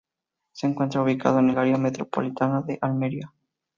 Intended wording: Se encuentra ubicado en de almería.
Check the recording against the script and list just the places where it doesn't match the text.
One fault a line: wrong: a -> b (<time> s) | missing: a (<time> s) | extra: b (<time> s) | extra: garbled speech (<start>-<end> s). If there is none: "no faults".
extra: el área metropolitana (1.5 s)